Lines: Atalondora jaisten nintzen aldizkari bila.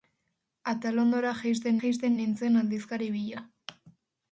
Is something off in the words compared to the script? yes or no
yes